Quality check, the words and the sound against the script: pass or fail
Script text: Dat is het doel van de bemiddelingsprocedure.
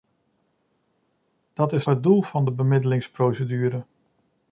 pass